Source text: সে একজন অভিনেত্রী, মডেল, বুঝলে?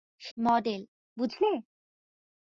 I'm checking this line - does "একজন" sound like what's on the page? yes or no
no